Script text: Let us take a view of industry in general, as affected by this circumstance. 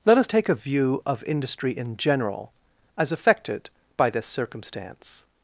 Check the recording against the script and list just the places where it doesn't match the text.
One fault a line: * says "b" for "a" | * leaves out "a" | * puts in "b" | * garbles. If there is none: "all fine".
all fine